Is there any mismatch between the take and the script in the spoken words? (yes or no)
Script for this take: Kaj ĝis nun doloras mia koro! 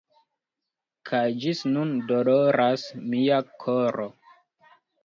no